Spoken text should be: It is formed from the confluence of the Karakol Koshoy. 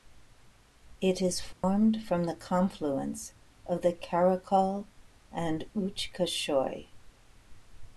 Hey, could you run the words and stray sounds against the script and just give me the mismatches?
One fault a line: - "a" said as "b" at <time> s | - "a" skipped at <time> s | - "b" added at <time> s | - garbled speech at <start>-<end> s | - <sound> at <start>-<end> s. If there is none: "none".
- dropout at 1.5-1.6 s
- "and Uch" added at 5.3 s